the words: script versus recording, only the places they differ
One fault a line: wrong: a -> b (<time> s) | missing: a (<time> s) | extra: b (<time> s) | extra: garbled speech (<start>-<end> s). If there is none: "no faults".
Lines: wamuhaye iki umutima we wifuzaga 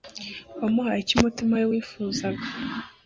wrong: iki -> icyo (1.0 s)